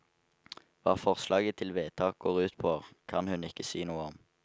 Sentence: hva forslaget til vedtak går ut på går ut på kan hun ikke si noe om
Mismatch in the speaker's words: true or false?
true